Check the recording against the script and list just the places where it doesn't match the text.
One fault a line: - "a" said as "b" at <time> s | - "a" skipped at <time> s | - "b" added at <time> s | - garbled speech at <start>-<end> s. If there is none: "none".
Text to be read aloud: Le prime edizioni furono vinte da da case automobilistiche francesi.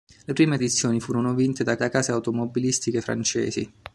none